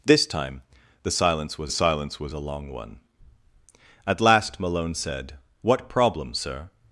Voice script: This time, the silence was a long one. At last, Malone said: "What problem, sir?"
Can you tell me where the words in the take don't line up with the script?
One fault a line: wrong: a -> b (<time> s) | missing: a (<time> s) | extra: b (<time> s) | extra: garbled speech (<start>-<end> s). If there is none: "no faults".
extra: silence was (1.7 s)